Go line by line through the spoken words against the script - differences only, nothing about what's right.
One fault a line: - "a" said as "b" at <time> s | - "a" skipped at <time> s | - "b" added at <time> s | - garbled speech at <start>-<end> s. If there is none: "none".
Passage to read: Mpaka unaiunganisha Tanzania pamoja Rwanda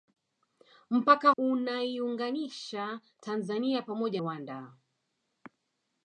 none